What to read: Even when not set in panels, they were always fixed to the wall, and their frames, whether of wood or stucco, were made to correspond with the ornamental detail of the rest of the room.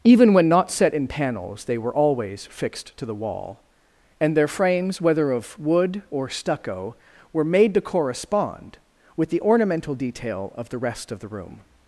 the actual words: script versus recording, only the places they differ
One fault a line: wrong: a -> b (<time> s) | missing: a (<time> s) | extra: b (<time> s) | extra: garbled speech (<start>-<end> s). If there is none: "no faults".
no faults